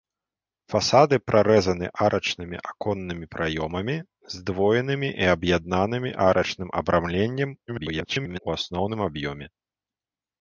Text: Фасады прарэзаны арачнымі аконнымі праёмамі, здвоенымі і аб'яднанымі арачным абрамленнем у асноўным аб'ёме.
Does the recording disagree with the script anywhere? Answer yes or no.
yes